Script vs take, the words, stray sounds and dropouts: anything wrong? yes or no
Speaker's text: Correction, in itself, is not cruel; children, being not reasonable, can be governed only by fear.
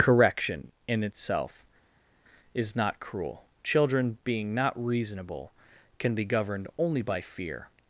no